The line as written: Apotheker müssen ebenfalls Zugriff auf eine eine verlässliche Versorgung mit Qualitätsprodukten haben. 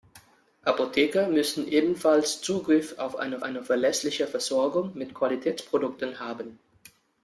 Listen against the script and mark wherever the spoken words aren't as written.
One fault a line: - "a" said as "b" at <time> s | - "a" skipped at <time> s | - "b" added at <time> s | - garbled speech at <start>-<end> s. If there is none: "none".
none